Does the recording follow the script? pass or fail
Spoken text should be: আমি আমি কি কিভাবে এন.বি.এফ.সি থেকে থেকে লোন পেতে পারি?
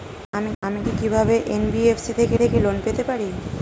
pass